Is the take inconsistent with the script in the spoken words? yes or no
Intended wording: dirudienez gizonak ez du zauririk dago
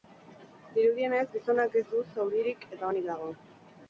yes